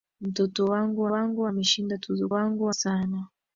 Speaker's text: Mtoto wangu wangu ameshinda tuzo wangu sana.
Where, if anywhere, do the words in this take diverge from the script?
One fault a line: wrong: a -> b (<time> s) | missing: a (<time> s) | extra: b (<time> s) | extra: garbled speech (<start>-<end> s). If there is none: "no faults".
no faults